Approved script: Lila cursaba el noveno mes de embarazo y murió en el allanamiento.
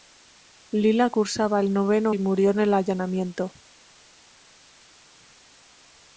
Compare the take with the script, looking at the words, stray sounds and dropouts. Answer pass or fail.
fail